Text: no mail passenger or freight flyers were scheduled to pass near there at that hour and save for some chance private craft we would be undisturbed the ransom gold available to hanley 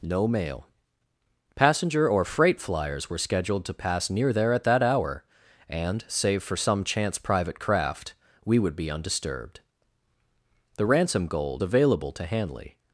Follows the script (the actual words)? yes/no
yes